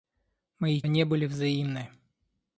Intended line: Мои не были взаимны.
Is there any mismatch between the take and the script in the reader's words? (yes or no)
no